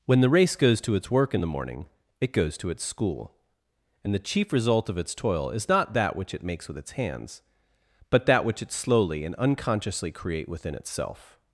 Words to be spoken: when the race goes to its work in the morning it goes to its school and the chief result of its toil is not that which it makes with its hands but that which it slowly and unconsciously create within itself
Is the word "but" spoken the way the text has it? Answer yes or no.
yes